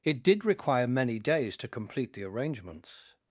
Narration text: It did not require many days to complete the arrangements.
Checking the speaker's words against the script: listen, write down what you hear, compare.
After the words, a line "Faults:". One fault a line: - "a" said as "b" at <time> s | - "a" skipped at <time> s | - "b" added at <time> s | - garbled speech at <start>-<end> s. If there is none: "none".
It did require many days to complete the arrangements.
Faults:
- "not" skipped at 0.4 s